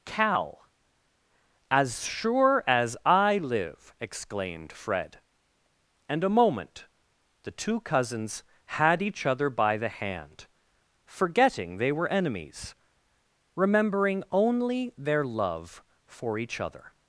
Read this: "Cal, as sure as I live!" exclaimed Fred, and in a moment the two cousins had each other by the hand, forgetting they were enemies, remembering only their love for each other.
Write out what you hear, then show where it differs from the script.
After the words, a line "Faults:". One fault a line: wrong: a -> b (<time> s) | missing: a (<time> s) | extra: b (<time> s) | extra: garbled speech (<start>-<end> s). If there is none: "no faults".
"Cal, as sure as I live!" exclaimed Fred, and a moment the two cousins had each other by the hand, forgetting they were enemies, remembering only their love for each other.
Faults:
missing: in (6.2 s)